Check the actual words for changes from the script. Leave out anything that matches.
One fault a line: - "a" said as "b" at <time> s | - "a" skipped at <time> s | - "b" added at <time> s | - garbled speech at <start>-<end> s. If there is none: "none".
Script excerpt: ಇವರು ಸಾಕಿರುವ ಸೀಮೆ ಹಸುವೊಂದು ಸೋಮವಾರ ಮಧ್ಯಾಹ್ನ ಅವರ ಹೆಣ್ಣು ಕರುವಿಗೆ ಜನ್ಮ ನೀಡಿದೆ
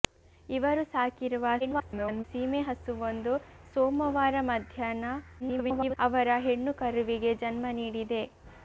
- garbled speech at 1.6-2.2 s
- garbled speech at 5.4-6.0 s